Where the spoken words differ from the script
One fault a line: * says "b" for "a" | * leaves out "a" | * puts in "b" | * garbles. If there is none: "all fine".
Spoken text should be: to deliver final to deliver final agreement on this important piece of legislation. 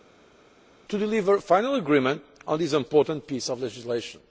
* leaves out "to deliver final"